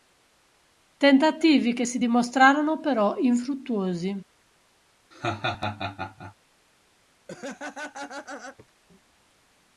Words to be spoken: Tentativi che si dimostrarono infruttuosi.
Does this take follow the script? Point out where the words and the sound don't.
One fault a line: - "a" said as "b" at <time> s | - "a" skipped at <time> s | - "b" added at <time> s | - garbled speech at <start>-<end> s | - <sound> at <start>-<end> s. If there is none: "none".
- "però" added at 2.8 s
- laugh at 5.1-6.3 s
- laugh at 7.3-8.7 s